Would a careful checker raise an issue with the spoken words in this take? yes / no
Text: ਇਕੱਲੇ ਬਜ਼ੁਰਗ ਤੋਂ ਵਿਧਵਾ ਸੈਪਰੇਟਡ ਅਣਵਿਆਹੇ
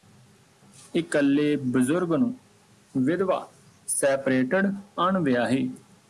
yes